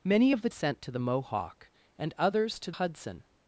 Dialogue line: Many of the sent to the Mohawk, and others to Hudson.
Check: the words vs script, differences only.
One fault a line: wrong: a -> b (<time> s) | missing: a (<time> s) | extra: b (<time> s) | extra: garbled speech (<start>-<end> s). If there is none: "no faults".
no faults